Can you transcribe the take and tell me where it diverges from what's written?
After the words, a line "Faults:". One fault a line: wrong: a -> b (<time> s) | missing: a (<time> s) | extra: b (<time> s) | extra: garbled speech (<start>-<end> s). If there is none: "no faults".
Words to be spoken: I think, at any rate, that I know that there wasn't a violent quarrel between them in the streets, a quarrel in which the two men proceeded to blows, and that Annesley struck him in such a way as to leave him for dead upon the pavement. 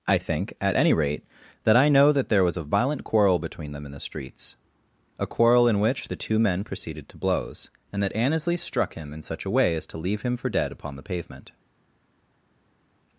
I think, at any rate, that I know that there was a violent quarrel between them in the streets, a quarrel in which the two men proceeded to blows, and that Annesley struck him in such a way as to leave him for dead upon the pavement.
Faults:
wrong: wasn't -> was (2.4 s)